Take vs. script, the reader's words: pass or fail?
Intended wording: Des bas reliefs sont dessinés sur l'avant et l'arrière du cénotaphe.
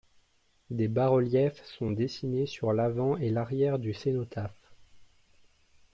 pass